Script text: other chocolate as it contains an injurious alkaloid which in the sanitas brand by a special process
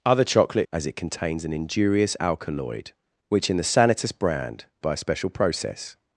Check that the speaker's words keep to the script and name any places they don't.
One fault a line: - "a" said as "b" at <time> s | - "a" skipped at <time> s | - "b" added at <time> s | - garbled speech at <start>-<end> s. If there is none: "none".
none